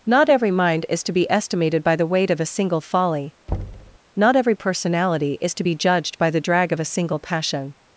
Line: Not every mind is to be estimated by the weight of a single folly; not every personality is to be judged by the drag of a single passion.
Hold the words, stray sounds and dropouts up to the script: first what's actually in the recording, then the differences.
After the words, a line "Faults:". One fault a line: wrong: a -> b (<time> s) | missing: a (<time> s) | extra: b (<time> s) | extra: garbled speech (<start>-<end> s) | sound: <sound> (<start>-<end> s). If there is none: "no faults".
Not every mind is to be estimated by the weight of a single folly; not every personality is to be judged by the drag of a single passion.
Faults:
sound: thud (3.5-4.0 s)